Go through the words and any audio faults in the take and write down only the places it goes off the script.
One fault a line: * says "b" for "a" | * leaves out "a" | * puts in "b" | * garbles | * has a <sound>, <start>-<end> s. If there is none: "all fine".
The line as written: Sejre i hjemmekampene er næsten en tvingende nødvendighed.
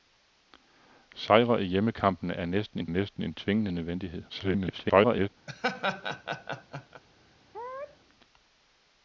* puts in "næsten en"
* garbles
* has a laugh, 5.5-7.0 s
* has a sneeze, 7.5-8.0 s